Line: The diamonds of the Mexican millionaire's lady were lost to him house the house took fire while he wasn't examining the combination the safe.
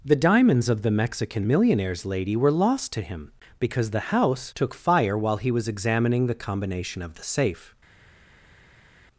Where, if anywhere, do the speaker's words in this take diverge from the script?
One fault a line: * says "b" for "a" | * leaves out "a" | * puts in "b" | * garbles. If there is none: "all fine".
* says "because" for "house"
* says "was" for "wasn't"
* puts in "of"